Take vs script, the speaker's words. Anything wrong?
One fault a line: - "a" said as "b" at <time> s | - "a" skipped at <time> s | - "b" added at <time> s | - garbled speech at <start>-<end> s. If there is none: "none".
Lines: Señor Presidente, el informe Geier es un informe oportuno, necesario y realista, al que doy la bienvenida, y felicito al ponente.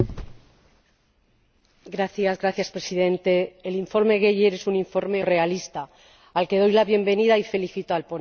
- "oportuno necesario" skipped at 5.2 s